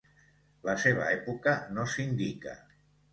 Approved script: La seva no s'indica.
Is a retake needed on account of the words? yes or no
yes